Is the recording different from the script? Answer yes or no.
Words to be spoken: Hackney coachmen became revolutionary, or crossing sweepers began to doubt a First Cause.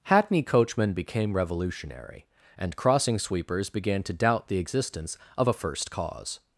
yes